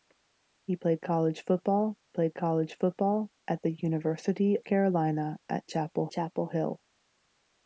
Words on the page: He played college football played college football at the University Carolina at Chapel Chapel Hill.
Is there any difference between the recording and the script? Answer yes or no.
no